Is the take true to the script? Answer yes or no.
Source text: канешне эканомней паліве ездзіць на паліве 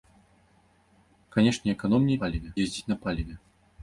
yes